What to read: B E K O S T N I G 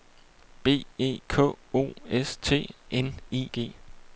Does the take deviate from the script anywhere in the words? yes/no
no